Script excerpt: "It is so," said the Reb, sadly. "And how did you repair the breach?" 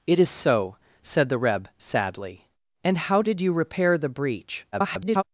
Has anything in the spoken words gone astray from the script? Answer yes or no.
yes